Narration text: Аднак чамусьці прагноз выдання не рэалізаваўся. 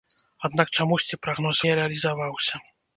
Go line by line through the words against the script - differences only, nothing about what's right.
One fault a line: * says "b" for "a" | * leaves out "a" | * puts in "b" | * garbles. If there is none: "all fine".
* leaves out "выдання"